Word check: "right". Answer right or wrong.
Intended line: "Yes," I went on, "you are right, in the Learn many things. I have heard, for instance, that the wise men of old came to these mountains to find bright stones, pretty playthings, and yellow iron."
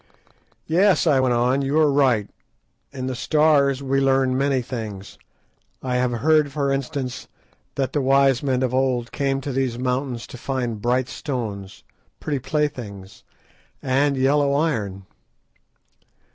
right